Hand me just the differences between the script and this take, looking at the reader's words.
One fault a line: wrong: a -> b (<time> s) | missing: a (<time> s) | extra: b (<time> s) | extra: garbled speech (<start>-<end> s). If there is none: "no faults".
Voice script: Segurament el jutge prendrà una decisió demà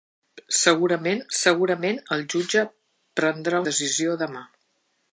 extra: segurament (1.4 s)
missing: una (3.6 s)